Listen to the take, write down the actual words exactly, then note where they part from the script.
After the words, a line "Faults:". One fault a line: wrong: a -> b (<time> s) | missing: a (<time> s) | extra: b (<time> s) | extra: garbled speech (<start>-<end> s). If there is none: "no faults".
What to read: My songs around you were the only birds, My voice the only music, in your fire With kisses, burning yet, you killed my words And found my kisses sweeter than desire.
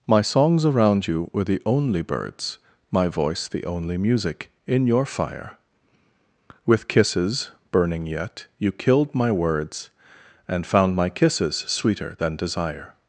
My songs around you were the only birds, My voice the only music, in your fire With kisses, burning yet, you killed my words And found my kisses sweeter than desire.
Faults:
no faults